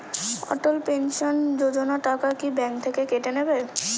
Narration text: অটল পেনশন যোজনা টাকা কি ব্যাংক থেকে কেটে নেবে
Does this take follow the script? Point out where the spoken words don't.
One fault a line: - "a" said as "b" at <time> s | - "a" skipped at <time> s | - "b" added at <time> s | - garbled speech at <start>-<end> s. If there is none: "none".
none